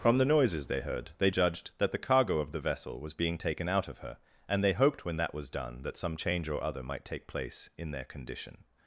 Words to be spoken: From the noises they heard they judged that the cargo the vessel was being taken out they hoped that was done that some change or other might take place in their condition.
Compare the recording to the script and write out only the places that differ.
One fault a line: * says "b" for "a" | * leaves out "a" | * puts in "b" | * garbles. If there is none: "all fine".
* puts in "of"
* puts in "of her and"
* puts in "when"